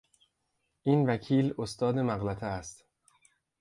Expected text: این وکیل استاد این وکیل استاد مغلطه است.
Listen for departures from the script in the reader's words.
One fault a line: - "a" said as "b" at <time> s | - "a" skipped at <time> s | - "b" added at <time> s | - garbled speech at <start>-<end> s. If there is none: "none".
- "این وکیل استاد" skipped at 2.0 s